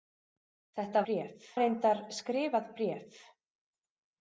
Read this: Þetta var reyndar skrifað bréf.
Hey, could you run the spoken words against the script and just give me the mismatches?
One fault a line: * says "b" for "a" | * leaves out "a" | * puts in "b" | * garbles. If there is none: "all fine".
* says "bréf" for "var"